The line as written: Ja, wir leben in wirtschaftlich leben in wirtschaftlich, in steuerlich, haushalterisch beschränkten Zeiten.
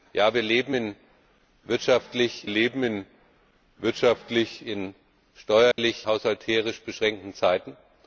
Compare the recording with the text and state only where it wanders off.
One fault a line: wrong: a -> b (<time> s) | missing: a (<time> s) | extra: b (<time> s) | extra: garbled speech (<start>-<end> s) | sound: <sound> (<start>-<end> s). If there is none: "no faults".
sound: dropout (5.7-5.8 s)